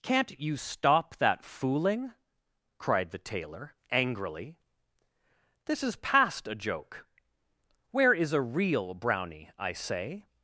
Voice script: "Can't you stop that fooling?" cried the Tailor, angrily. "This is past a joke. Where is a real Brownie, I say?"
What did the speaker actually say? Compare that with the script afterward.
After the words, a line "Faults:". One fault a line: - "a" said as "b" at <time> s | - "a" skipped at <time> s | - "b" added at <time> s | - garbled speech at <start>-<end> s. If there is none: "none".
"Can't you stop that fooling?" cried the Tailor, angrily. "This is past a joke. Where is a real Brownie, I say?"
Faults:
none